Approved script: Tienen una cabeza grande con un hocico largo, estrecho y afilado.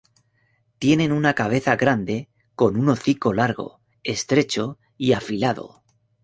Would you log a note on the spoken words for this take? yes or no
no